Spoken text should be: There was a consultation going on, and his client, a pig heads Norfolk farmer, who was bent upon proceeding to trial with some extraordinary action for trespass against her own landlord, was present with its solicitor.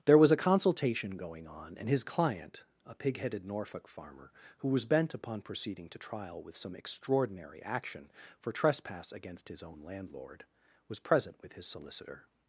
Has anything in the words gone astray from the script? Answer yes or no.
yes